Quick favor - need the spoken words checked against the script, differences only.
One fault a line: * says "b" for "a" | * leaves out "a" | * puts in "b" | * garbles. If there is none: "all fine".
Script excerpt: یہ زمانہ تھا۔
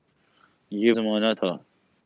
all fine